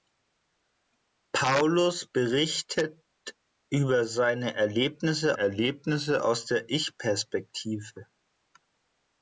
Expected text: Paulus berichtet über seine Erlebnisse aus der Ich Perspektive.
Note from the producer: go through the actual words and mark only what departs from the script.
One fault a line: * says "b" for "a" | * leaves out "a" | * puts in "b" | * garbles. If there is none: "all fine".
* puts in "Erlebnisse"